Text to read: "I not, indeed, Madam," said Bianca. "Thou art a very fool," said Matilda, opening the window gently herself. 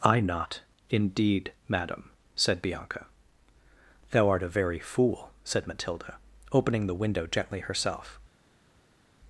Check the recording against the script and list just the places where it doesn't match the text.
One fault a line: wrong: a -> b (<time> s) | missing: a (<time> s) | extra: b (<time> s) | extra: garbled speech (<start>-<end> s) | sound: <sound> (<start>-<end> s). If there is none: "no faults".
no faults